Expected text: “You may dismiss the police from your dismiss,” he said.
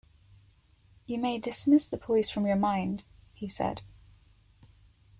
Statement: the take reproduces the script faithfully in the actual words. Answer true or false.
false